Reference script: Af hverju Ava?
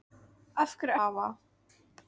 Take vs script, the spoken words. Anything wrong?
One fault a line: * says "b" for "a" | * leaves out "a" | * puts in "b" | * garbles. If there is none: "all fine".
all fine